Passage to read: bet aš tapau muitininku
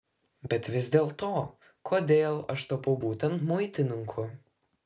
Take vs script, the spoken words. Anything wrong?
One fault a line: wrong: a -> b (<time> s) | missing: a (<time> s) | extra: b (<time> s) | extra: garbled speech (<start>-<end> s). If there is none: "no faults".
extra: vis dėlto kodėl (0.8 s)
extra: būtent (3.0 s)